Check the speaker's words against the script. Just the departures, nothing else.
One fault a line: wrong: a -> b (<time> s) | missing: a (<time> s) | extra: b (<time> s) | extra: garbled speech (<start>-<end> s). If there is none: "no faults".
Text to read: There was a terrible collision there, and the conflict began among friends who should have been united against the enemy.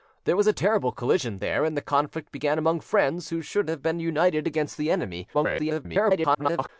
extra: garbled speech (5.3-6.7 s)